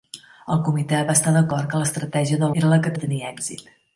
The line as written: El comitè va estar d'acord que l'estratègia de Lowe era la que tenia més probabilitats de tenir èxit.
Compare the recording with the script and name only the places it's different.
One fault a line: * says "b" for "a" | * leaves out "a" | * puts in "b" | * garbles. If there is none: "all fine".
* leaves out "Lowe"
* leaves out "tenia més probabilitats"